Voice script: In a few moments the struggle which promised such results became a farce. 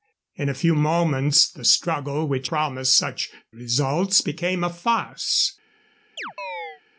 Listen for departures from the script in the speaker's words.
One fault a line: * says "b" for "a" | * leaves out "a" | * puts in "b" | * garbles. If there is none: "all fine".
all fine